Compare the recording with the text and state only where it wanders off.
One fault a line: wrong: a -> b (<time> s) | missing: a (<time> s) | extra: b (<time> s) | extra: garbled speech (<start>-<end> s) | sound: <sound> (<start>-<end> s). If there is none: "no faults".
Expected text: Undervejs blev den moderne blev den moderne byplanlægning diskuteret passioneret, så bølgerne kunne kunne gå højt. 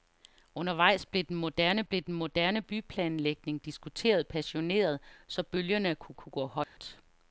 sound: dropout (6.6-6.8 s)